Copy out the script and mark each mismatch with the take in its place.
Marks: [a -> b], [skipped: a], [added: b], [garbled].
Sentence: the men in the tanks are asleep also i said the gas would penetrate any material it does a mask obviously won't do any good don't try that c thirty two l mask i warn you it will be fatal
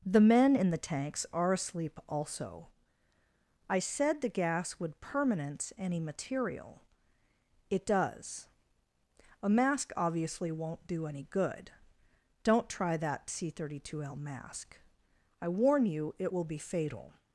the men in the tanks are asleep also i said the gas would [penetrate -> permanence] any material it does a mask obviously won't do any good don't try that c thirty two l mask i warn you it will be fatal